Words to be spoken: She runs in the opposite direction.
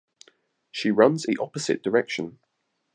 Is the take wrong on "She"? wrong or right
right